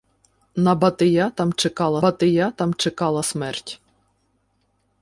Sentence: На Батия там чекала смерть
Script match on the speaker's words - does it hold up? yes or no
no